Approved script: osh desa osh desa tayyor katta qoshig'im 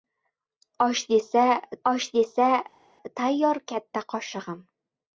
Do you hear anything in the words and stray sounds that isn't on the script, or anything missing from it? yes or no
no